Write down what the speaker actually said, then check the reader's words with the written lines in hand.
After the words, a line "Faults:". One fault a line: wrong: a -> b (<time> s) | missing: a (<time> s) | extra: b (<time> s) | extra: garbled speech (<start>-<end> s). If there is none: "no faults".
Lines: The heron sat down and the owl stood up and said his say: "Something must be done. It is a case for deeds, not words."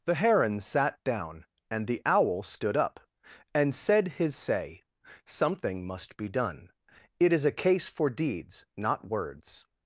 The heron sat down and the owl stood up and said his say: "Something must be done. It is a case for deeds, not words."
Faults:
no faults